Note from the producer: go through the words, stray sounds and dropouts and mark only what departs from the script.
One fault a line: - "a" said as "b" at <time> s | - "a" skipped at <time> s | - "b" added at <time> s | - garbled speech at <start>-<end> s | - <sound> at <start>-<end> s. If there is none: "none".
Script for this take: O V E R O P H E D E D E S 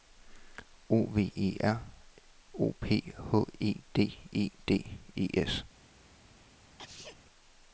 - sneeze at 6.8-7.2 s